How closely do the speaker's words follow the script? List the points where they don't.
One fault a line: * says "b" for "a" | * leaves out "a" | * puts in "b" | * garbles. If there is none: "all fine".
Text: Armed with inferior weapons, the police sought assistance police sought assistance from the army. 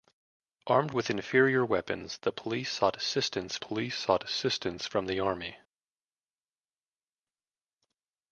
all fine